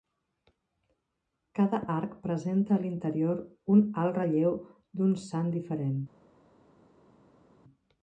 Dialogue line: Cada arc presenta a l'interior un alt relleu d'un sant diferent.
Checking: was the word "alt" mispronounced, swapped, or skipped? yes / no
no